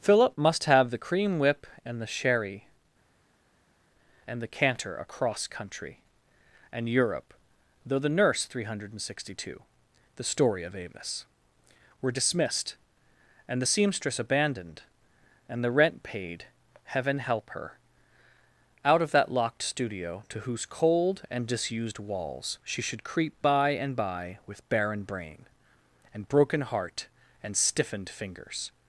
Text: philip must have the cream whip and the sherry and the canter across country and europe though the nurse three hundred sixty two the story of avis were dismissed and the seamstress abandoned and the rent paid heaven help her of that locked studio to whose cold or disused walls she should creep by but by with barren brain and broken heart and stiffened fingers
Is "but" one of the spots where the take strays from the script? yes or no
yes